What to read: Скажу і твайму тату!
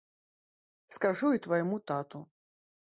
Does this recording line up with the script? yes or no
yes